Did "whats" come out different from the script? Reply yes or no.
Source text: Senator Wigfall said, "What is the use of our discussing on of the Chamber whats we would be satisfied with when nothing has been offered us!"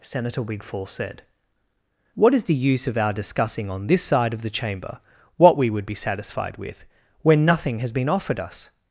yes